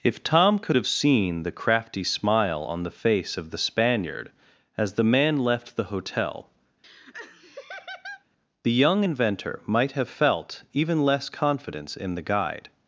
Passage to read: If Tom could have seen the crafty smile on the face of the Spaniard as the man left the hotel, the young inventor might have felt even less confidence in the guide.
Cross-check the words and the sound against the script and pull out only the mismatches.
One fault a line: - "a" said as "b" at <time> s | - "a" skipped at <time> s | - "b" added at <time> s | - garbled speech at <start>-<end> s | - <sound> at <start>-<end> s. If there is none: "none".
- laugh at 6.8-8.2 s